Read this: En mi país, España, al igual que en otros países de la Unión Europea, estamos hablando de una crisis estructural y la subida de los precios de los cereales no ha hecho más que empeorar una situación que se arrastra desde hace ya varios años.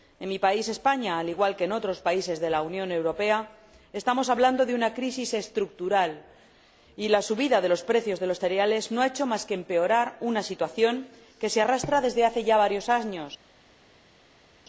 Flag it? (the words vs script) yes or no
no